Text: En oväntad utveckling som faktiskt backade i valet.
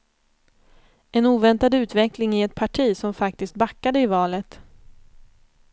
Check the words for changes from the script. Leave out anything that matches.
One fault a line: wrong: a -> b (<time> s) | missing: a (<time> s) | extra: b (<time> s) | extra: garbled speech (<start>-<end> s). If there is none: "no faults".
extra: i ett parti (2.3 s)